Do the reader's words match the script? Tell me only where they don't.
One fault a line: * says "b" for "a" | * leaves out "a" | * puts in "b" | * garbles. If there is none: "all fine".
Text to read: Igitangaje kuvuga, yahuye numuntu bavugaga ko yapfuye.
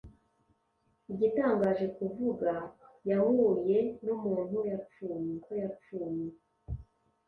* says "yapfuye" for "bavugaga"